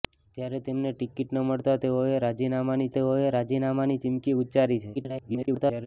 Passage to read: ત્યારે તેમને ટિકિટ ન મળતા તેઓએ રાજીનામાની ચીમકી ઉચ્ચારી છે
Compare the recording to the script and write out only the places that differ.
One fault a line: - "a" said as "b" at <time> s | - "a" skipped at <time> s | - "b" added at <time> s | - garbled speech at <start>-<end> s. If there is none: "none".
- "તેઓએ રાજીનામાની" added at 3.0 s
- garbled speech at 4.9-5.9 s